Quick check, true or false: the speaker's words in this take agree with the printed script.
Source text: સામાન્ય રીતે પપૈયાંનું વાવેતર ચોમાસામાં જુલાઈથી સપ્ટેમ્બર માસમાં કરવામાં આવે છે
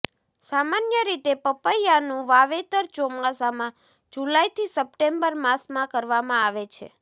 true